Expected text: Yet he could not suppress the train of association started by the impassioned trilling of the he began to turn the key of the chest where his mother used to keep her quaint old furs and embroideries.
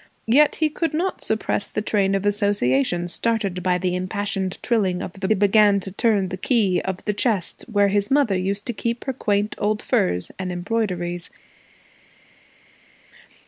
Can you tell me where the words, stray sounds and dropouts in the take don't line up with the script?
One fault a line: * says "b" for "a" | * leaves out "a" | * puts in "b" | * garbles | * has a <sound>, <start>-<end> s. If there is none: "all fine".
all fine